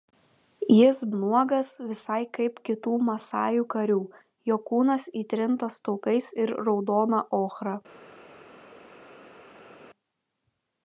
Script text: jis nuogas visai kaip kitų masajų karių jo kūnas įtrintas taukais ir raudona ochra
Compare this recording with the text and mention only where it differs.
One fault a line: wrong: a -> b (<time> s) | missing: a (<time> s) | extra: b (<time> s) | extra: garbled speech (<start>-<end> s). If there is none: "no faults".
no faults